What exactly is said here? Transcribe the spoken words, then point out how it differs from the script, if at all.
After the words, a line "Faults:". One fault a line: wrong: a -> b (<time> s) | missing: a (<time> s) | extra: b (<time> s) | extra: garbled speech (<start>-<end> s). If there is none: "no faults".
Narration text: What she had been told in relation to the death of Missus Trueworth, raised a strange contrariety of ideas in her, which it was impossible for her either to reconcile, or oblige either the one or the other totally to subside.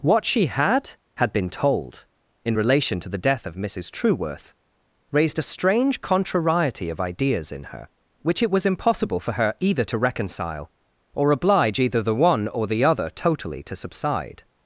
What she had had been told in relation to the death of Missus Trueworth, raised a strange contrariety of ideas in her, which it was impossible for her either to reconcile, or oblige either the one or the other totally to subside.
Faults:
extra: had (1.2 s)